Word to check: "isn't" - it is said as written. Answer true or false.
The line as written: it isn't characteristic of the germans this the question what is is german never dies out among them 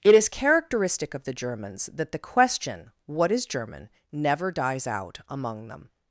false